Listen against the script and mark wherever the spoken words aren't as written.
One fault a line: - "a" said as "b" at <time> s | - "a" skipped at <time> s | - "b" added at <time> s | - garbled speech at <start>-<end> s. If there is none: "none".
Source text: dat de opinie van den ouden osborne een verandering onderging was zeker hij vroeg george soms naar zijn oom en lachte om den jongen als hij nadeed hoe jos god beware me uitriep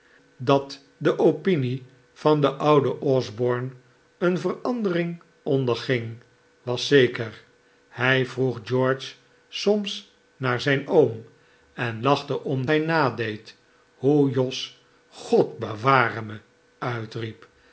- "den jongen als" skipped at 12.7 s